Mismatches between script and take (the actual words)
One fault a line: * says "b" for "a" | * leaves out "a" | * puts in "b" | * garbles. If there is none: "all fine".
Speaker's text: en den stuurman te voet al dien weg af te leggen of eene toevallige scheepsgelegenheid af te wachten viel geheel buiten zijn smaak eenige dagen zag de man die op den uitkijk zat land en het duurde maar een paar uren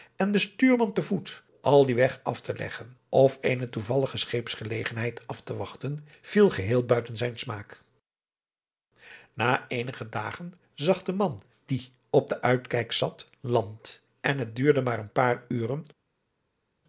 * puts in "na"